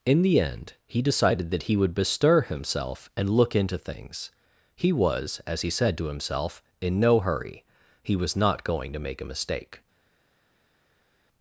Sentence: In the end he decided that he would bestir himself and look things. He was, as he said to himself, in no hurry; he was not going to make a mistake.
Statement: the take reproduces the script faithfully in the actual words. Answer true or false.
false